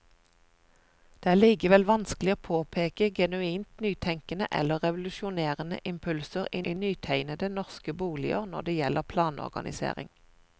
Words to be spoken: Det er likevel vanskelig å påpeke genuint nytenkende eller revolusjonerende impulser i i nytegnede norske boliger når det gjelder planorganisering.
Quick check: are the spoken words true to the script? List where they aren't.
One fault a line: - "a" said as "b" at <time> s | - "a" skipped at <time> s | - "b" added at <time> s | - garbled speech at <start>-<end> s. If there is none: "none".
none